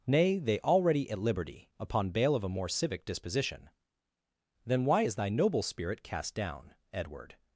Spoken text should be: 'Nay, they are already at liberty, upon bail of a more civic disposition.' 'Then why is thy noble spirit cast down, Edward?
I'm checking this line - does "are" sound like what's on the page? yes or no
no